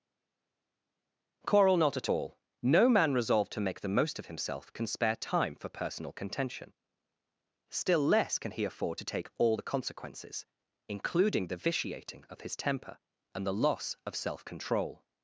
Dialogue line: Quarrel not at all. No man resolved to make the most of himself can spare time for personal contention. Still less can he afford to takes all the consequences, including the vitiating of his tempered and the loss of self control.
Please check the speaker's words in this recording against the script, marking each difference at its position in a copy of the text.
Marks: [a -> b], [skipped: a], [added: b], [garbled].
Quarrel not at all. No man resolved to make the most of himself can spare time for personal contention. Still less can he afford to [takes -> take] all the consequences, including the vitiating of his [tempered -> temper] and the loss of self control.